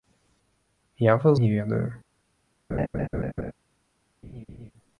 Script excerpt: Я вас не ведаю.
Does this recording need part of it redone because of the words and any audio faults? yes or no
yes